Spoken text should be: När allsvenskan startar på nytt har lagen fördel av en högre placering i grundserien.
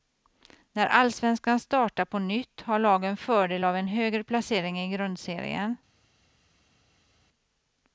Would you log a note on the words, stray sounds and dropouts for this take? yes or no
no